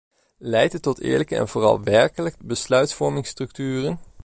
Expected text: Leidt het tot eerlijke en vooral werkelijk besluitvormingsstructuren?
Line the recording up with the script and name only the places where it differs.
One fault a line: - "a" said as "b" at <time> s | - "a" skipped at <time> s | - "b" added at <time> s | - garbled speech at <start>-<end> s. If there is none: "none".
none